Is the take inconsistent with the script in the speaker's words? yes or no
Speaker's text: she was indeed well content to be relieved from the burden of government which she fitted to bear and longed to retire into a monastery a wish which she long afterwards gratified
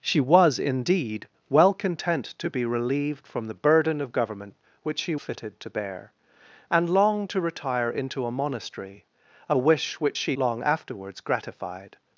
no